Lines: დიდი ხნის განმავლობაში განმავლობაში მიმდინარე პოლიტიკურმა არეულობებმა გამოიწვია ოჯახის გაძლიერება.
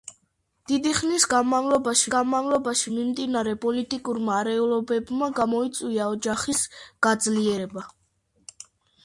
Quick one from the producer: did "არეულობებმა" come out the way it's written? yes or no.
yes